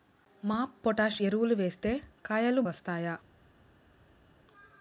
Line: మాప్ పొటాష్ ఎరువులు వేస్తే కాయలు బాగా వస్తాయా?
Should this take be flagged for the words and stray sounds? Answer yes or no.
yes